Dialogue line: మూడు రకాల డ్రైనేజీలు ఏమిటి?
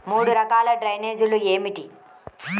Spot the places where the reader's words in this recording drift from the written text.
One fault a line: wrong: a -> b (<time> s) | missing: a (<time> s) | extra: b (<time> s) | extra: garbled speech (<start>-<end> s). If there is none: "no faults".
no faults